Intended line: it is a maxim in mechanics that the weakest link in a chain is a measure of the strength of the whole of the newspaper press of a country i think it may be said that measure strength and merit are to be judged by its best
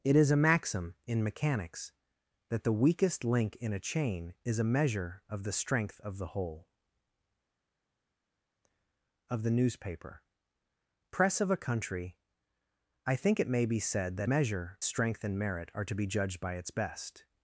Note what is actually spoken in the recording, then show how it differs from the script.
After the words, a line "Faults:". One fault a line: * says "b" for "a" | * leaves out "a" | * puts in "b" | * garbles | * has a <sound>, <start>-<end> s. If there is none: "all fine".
it is a maxim in mechanics that the weakest link in a chain is a measure of the strength of the whole of the newspaper press of a country i think it may be said that measure strength and merit are to be judged by its best
Faults:
all fine